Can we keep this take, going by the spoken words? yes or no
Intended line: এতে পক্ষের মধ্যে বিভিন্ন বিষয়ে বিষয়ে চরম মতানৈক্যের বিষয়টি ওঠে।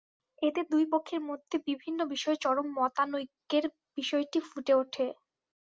no